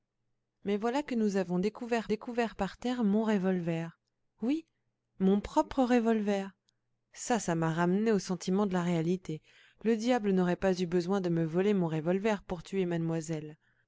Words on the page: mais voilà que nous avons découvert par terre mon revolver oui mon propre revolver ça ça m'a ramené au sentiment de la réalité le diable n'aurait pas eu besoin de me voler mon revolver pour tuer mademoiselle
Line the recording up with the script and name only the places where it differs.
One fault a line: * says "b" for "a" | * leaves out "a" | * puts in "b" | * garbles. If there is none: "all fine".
* puts in "découvert"